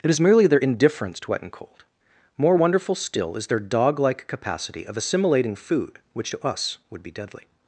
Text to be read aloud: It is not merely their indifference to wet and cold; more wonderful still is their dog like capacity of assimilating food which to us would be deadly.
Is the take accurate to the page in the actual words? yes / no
no